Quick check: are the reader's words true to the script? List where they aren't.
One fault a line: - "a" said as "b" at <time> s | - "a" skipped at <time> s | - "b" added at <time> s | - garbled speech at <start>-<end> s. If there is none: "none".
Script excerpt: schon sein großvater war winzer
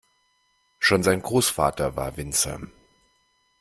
none